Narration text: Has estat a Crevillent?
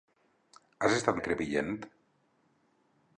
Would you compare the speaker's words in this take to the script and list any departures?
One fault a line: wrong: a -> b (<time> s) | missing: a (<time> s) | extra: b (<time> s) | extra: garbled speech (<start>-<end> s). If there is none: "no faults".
no faults